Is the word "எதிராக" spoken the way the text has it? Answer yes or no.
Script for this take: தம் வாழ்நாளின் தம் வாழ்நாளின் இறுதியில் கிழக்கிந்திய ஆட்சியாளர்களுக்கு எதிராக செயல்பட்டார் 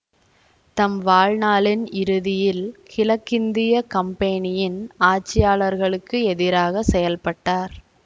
yes